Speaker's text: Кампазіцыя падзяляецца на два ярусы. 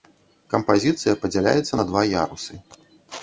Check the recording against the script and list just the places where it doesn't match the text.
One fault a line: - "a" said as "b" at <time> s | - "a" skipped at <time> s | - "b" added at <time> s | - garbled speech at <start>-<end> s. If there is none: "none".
none